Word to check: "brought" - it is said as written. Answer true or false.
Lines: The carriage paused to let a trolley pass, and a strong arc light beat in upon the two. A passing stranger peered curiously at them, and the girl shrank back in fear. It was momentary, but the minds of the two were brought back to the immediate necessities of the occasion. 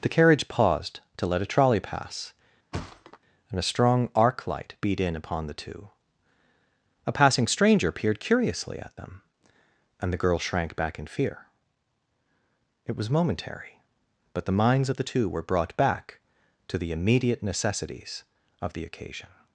true